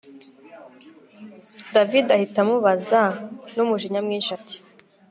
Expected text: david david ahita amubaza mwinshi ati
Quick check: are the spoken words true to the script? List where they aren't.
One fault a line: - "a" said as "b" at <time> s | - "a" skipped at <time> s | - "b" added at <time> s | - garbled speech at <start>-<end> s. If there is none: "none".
- "david" skipped at 2.0 s
- "numujinya" added at 3.5 s